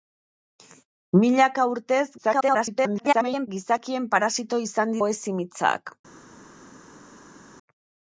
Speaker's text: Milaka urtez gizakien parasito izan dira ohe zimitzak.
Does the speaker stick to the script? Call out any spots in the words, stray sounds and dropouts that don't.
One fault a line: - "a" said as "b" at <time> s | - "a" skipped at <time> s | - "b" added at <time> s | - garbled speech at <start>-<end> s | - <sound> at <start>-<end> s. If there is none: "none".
- garbled speech at 2.2-3.5 s
- "dira" skipped at 5.0 s